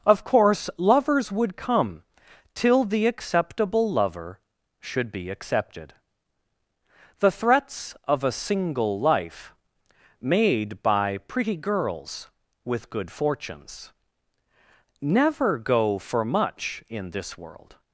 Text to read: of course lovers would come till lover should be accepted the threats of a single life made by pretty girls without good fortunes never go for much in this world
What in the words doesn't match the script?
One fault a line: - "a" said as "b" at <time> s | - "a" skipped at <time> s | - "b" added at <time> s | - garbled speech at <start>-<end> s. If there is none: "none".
- "the acceptable" added at 2.8 s
- "without" said as "with" at 12.6 s